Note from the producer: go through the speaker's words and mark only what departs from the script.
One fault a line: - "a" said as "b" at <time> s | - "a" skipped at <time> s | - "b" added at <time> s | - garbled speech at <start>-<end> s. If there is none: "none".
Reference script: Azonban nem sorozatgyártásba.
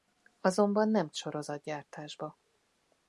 none